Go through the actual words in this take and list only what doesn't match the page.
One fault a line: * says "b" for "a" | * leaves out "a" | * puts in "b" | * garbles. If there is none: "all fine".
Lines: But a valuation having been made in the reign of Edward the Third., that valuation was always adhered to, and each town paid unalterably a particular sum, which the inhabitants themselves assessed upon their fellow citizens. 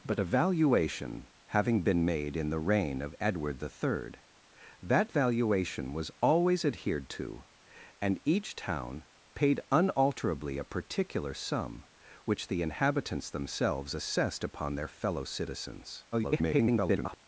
* garbles